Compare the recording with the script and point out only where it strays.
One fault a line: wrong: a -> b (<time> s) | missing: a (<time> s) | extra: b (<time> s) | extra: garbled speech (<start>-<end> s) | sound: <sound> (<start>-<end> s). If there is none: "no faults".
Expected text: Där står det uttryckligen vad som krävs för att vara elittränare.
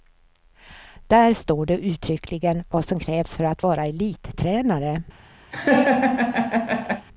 sound: laugh (5.5-7.1 s)